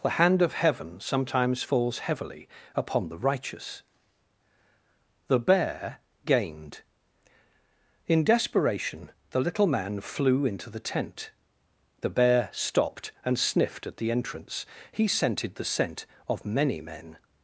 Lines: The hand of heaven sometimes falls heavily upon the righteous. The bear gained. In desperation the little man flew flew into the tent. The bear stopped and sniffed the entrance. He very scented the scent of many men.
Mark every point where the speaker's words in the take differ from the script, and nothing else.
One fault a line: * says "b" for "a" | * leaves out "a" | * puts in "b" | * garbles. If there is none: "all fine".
* leaves out "flew"
* puts in "at"
* leaves out "very"